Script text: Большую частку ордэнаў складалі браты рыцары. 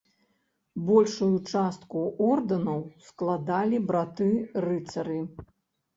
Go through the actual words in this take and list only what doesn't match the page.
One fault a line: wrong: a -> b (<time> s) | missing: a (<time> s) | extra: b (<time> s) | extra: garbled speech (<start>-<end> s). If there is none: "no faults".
no faults